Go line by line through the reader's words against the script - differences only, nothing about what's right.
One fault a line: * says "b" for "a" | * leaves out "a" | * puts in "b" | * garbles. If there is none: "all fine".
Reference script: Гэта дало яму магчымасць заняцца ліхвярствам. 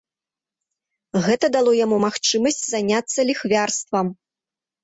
all fine